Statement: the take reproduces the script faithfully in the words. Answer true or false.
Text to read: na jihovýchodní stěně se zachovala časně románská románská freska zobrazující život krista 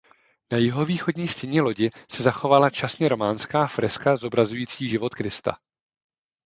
false